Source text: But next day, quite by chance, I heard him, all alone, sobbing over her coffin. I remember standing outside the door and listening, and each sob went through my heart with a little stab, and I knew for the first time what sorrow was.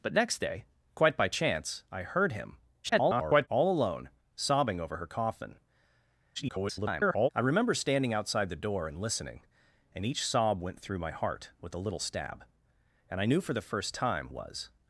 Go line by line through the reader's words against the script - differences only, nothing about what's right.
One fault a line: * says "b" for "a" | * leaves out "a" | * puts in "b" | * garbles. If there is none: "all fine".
* garbles
* garbles
* leaves out "what sorrow"